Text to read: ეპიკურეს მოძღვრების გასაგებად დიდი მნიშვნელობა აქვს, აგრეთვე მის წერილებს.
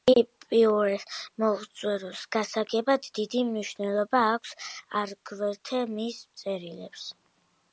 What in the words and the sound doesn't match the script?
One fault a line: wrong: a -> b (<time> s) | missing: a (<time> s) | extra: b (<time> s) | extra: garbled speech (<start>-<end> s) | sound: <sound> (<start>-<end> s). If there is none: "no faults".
no faults